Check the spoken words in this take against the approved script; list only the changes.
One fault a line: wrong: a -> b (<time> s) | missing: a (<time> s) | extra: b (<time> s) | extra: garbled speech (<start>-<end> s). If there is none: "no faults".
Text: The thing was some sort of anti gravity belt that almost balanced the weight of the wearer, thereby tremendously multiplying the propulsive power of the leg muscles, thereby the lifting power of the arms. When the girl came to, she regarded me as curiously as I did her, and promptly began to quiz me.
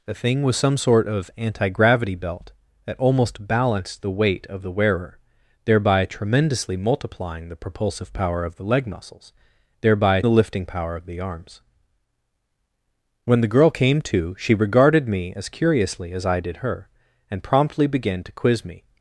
no faults